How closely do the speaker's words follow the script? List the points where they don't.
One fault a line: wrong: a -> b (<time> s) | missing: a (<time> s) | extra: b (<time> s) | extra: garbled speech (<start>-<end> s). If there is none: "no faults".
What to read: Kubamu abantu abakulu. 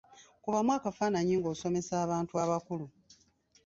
extra: akafaananyi ng'osomesa (0.8 s)